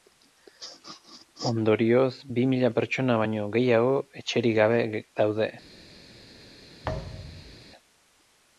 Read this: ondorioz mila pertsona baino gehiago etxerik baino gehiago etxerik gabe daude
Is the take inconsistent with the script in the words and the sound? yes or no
yes